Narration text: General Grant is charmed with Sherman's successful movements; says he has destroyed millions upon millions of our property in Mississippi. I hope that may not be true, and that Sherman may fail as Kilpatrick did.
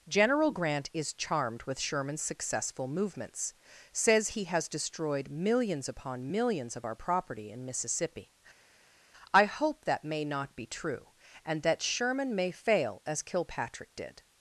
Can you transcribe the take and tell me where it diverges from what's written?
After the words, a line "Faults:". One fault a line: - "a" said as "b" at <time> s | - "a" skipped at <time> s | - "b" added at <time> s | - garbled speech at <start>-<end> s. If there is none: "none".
General Grant is charmed with Sherman's successful movements; says he has destroyed millions upon millions of our property in Mississippi. I hope that may not be true, and that Sherman may fail as Kilpatrick did.
Faults:
none